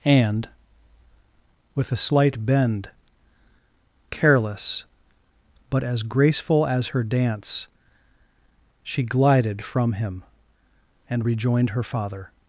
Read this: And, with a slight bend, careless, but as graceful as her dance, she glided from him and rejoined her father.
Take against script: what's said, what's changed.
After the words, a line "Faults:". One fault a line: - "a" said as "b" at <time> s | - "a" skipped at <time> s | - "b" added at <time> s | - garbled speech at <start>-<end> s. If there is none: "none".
And, with a slight bend, careless, but as graceful as her dance, she glided from him and rejoined her father.
Faults:
none